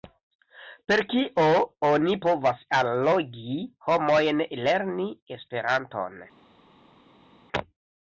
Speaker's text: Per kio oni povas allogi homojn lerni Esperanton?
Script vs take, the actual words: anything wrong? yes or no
no